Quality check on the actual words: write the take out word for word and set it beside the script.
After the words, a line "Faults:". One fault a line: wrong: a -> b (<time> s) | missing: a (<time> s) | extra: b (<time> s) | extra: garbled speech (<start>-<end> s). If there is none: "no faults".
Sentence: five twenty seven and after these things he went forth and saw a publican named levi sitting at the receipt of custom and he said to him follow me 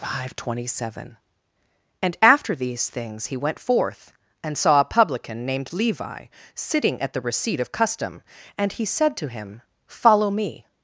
five twenty seven and after these things he went forth and saw a publican named levi sitting at the receipt of custom and he said to him follow me
Faults:
no faults